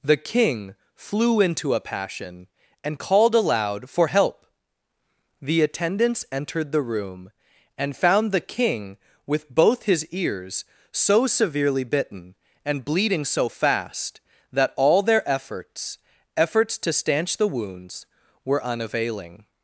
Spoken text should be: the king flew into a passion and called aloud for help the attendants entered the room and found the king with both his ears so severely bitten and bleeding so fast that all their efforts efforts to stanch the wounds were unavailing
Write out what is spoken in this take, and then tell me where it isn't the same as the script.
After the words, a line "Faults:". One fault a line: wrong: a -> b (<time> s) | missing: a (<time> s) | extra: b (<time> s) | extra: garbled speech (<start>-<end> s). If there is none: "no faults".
the king flew into a passion and called aloud for help the attendants entered the room and found the king with both his ears so severely bitten and bleeding so fast that all their efforts efforts to stanch the wounds were unavailing
Faults:
no faults